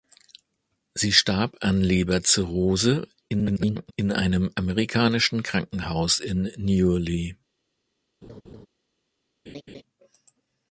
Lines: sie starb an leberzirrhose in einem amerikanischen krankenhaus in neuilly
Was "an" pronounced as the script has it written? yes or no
yes